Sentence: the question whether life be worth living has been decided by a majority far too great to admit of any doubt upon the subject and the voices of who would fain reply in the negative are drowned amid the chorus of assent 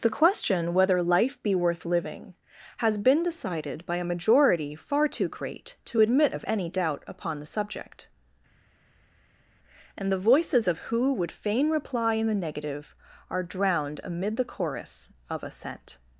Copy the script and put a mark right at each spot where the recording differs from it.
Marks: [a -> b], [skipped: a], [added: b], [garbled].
the question whether life be worth living has been decided by a majority far too great to admit of any doubt upon the subject and the voices of who would fain reply in the negative are drowned amid the chorus of assent